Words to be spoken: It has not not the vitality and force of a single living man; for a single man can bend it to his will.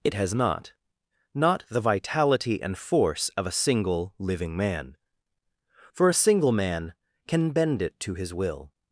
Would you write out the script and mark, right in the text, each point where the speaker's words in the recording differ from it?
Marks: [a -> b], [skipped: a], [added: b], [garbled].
It has not not the vitality and force of a single living man; for a single man can bend it to his will.